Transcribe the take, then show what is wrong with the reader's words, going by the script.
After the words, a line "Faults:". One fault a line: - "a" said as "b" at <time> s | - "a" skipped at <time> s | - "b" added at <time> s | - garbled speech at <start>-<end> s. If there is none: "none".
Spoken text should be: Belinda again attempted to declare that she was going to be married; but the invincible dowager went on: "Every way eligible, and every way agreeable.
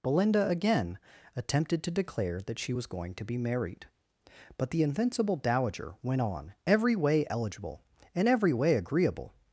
Belinda again attempted to declare that she was going to be married; but the invincible dowager went on: "Every way eligible, and every way agreeable.
Faults:
none